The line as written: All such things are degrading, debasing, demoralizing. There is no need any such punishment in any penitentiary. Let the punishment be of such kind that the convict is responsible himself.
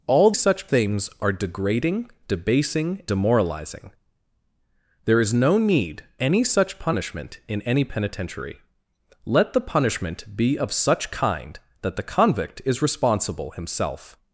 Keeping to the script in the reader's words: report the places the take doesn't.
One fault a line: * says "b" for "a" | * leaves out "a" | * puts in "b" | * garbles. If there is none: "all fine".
all fine